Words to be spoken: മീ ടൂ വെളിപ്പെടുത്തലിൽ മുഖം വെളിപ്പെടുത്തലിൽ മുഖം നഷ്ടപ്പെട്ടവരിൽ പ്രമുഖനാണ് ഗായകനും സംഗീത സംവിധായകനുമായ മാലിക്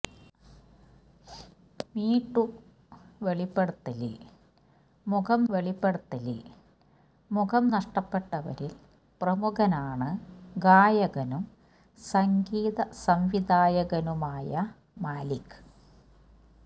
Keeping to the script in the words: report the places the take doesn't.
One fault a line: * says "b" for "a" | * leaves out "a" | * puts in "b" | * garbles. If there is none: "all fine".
all fine